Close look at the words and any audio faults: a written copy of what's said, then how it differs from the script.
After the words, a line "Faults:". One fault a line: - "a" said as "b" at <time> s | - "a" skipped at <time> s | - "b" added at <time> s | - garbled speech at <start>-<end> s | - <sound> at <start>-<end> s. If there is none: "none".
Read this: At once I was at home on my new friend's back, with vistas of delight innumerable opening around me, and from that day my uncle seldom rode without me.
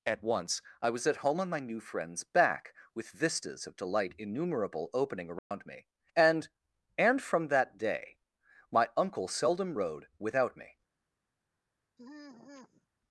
At once I was at home on my new friend's back, with vistas of delight innumerable opening around me, and and from that day my uncle seldom rode without me.
Faults:
- dropout at 5.4-5.5 s
- "and" added at 7.0 s
- sigh at 12.0-12.9 s